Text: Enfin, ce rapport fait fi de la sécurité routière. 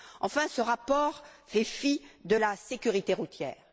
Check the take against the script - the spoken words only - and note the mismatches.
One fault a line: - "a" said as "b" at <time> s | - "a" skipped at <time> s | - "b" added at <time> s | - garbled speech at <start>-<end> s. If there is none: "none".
none